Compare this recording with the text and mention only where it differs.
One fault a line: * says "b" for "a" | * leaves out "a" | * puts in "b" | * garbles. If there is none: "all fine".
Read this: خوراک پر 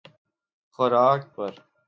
all fine